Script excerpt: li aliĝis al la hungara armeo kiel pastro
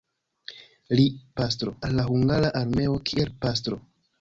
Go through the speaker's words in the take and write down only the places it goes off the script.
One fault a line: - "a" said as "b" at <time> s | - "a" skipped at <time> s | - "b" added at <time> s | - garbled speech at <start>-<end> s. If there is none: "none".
- "aliĝis" said as "pastro" at 1.4 s